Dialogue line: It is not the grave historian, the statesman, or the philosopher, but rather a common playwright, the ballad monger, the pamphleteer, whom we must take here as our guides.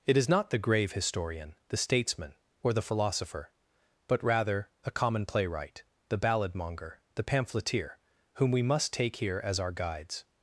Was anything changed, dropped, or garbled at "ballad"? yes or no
no